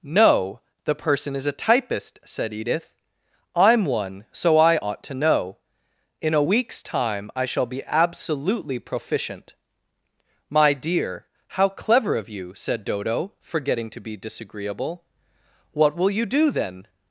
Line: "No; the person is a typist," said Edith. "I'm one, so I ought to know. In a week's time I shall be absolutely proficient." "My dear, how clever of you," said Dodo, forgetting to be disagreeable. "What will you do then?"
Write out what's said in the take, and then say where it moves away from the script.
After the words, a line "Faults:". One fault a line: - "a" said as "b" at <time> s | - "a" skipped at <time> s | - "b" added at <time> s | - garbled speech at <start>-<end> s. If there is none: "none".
"No; the person is a typist," said Edith. "I'm one, so I ought to know. In a week's time I shall be absolutely proficient." "My dear, how clever of you," said Dodo, forgetting to be disagreeable. "What will you do then?"
Faults:
none